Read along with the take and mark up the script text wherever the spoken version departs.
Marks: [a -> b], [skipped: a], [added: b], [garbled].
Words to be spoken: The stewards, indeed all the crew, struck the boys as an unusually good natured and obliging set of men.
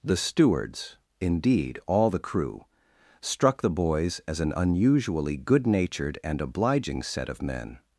The stewards, indeed all the crew, struck the boys as an unusually good natured and obliging set of men.